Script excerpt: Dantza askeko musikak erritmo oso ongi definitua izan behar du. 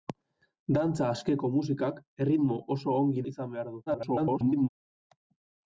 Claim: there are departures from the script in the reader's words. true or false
true